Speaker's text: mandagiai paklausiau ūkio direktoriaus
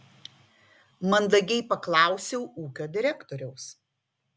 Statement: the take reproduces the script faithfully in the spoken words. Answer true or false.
true